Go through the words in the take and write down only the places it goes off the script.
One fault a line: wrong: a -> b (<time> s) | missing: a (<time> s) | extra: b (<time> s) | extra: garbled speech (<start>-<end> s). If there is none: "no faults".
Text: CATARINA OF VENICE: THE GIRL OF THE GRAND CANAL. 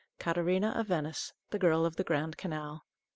no faults